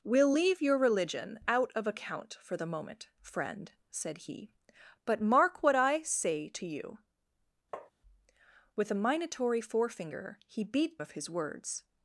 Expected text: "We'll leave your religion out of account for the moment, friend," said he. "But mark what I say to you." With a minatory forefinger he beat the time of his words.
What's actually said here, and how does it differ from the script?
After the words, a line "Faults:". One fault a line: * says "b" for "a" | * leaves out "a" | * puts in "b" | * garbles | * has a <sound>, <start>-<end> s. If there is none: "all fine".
"We'll leave your religion out of account for the moment, friend," said he. "But mark what I say to you." With a minatory forefinger he beat of his words.
Faults:
* has a tap, 7.7-7.9 s
* leaves out "the time"